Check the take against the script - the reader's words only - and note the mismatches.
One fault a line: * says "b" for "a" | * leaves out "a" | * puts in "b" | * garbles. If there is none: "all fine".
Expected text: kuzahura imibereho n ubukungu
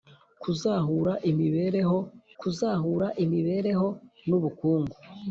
* puts in "kuzahura imibereho"